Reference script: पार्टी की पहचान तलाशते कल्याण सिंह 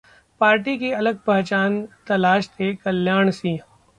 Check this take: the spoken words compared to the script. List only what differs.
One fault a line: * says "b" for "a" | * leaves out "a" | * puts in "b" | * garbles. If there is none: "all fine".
* puts in "अलग"